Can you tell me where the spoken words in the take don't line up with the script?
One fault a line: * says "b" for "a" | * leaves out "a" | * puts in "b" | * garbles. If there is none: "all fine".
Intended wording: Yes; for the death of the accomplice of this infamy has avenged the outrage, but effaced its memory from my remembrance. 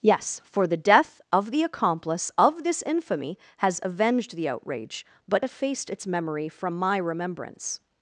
all fine